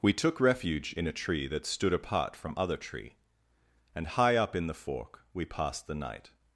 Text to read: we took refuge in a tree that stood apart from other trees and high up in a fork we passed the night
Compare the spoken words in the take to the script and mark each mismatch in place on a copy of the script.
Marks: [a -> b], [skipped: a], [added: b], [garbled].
we took refuge in a tree that stood apart from other [trees -> tree] and high up in [a -> the] fork we passed the night